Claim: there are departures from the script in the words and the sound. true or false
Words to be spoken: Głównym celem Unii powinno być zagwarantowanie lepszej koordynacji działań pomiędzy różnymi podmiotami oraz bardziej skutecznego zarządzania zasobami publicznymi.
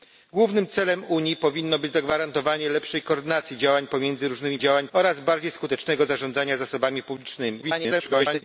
true